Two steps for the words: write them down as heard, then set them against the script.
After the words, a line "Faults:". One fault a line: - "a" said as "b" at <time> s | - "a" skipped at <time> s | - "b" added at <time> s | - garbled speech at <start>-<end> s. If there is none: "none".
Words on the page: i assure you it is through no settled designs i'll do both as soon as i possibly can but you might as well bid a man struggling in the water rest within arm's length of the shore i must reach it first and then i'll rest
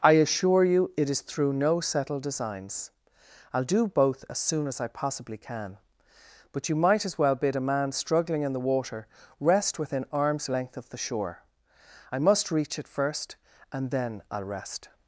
i assure you it is through no settled designs i'll do both as soon as i possibly can but you might as well bid a man struggling in the water rest within arm's length of the shore i must reach it first and then i'll rest
Faults:
none